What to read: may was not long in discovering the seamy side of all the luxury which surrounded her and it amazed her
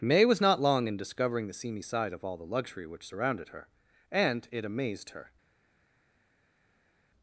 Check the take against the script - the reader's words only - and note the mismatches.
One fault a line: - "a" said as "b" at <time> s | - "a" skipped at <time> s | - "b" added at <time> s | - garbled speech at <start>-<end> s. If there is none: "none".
none